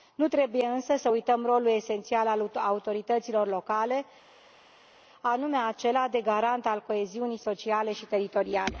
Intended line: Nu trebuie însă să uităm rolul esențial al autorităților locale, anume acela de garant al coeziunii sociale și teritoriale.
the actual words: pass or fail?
pass